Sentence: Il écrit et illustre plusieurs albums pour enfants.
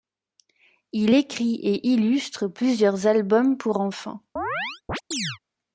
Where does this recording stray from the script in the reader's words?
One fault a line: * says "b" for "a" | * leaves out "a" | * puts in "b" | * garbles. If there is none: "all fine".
all fine